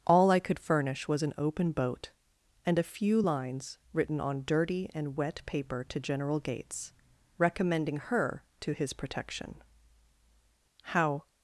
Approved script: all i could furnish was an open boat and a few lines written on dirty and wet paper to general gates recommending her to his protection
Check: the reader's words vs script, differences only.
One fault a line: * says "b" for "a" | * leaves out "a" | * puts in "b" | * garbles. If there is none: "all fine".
* puts in "how"